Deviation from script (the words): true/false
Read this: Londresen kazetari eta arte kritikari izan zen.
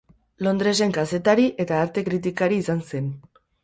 false